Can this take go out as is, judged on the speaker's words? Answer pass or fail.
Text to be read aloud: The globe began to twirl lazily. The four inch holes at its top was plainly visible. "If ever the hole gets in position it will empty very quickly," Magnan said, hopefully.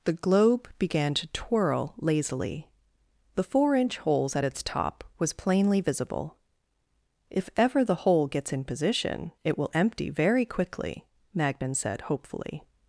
pass